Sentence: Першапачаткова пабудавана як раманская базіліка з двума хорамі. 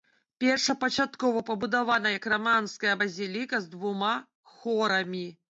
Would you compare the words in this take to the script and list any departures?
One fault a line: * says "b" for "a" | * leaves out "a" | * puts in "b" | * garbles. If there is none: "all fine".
all fine